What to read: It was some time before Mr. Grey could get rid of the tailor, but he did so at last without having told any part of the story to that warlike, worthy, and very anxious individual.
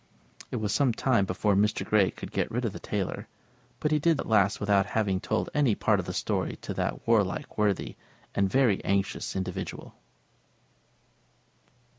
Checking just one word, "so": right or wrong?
wrong